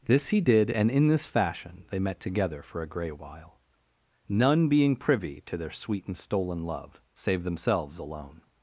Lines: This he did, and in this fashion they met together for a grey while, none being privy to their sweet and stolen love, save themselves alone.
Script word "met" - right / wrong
right